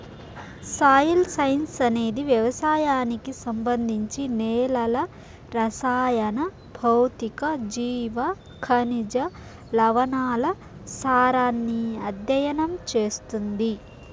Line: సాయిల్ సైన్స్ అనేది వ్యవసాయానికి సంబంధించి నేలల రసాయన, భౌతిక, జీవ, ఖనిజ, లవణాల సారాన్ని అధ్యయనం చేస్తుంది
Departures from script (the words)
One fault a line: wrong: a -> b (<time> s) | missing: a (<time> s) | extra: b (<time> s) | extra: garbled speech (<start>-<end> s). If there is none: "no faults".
no faults